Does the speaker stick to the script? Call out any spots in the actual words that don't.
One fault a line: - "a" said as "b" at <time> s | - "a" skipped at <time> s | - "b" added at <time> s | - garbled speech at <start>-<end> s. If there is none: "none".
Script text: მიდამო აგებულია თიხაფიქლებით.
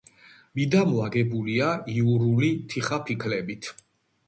- "იურული" added at 2.0 s